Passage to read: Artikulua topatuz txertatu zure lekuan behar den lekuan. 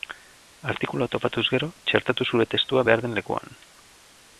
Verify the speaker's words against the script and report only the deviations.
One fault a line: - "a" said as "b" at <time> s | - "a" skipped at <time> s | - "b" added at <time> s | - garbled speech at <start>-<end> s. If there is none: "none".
- "gero" added at 1.6 s
- "lekuan" said as "testua" at 2.6 s